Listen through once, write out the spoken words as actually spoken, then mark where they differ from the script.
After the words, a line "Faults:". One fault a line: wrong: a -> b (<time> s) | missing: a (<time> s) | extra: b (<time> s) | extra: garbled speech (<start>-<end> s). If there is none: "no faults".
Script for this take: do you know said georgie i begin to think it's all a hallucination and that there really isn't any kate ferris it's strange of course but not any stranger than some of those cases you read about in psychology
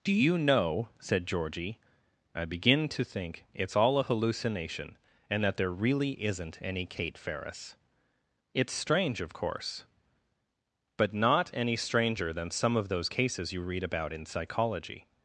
do you know said georgie i begin to think it's all a hallucination and that there really isn't any kate ferris it's strange of course but not any stranger than some of those cases you read about in psychology
Faults:
no faults